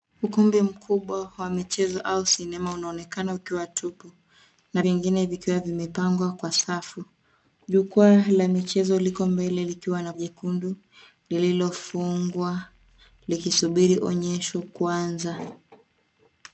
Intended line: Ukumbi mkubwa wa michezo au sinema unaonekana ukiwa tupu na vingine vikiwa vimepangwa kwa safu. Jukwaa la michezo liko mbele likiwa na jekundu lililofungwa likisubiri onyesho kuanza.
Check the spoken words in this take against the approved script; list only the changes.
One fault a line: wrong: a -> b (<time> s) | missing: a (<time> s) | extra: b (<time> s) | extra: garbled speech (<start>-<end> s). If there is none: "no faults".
no faults